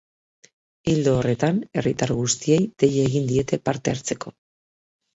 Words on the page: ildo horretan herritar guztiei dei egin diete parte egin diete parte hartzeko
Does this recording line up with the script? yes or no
no